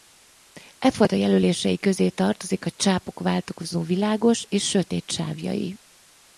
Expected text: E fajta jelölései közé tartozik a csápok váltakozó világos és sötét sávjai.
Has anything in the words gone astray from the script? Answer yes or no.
no